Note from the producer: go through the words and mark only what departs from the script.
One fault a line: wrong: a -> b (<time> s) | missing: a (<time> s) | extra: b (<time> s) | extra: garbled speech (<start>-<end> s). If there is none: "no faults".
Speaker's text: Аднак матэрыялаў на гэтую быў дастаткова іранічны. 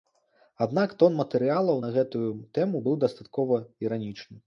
extra: тон (1.0 s)
extra: тэму (2.6 s)